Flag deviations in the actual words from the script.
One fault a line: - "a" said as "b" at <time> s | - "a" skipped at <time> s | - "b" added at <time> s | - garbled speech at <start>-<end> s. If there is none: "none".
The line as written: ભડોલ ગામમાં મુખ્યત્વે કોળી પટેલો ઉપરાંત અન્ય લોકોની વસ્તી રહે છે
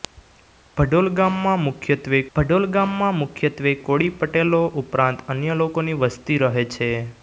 - "ભડોલ ગામમાં મુખ્યત્વે" added at 2.4 s